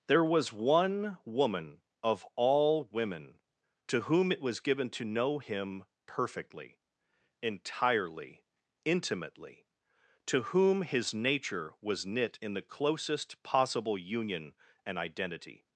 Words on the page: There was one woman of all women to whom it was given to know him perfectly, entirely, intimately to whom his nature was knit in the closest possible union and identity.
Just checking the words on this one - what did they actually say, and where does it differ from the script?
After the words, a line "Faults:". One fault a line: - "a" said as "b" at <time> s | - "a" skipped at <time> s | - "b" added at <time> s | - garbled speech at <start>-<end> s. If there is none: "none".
There was one woman of all women to whom it was given to know him perfectly, entirely, intimately to whom his nature was knit in the closest possible union and identity.
Faults:
none